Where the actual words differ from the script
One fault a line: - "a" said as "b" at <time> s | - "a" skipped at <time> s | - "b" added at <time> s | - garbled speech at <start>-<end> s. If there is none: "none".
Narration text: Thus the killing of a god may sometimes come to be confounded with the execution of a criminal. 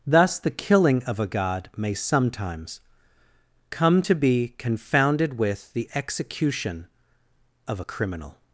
none